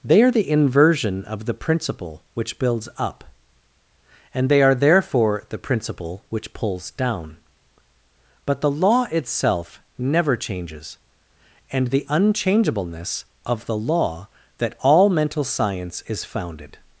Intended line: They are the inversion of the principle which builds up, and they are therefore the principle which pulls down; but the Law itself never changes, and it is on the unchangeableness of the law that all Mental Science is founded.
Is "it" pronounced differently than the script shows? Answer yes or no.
yes